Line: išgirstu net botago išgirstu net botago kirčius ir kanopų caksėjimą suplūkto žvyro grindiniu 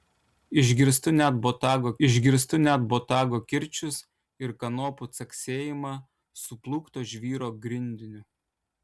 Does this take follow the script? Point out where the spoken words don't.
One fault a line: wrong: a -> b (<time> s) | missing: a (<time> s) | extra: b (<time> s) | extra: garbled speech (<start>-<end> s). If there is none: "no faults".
no faults